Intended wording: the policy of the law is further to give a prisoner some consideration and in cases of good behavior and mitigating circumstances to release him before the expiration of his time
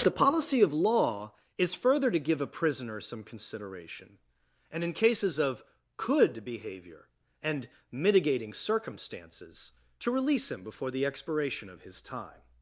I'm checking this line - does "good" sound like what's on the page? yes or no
no